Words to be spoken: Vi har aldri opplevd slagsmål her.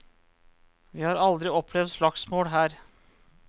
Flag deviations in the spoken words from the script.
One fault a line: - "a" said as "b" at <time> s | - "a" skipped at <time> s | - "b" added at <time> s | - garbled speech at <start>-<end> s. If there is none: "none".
none